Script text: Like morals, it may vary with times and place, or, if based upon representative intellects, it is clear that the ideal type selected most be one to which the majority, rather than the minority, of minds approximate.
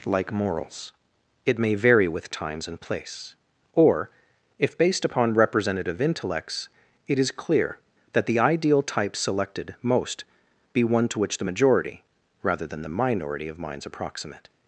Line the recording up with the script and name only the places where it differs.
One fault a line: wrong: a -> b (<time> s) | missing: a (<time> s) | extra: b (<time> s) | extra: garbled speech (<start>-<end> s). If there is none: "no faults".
no faults